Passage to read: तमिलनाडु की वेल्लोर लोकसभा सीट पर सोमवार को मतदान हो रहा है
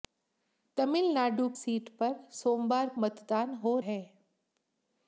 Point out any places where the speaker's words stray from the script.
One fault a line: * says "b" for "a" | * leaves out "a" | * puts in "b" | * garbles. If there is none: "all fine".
* leaves out "की वेल्लोर लोकसभा"
* leaves out "को"
* leaves out "रहा"